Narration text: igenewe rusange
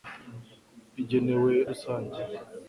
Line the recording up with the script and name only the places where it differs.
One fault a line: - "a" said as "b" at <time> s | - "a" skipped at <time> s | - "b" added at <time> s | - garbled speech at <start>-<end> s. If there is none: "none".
none